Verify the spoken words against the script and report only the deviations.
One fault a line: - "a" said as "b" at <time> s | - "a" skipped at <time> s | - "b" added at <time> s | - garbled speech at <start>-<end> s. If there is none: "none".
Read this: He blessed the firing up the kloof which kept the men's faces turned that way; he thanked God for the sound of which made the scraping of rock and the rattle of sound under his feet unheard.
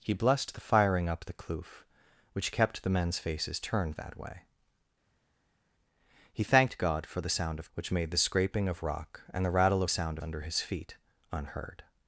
none